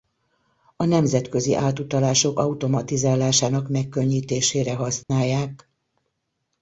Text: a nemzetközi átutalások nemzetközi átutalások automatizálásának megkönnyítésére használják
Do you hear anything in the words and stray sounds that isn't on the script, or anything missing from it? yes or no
yes